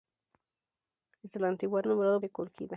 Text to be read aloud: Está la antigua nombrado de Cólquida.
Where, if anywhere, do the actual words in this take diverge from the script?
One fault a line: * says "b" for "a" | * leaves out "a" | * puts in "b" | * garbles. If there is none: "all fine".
all fine